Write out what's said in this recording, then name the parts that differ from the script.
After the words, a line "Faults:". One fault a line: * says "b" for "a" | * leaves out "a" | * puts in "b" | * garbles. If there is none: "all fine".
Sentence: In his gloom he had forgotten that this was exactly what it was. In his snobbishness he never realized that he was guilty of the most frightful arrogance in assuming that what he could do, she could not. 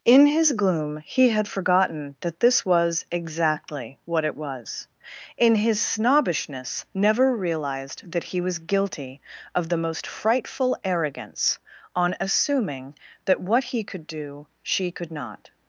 In his gloom he had forgotten that this was exactly what it was. In his snobbishness never realized that he was guilty of the most frightful arrogance on assuming that what he could do, she could not.
Faults:
* leaves out "he"
* says "on" for "in"